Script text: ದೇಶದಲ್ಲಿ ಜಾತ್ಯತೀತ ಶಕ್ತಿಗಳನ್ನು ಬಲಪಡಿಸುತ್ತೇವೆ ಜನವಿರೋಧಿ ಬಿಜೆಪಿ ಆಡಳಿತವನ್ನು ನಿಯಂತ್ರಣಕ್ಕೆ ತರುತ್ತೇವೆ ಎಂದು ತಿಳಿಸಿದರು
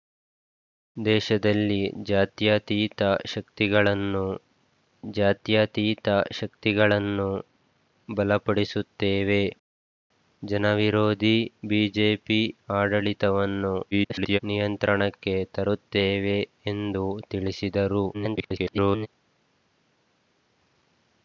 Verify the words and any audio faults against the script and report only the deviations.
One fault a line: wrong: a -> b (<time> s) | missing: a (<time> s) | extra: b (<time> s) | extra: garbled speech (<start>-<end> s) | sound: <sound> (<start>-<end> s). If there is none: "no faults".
extra: ಜಾತ್ಯತೀತ ಶಕ್ತಿಗಳನ್ನು (5.1 s)
extra: garbled speech (13.9-14.4 s)
extra: garbled speech (18.1-19.1 s)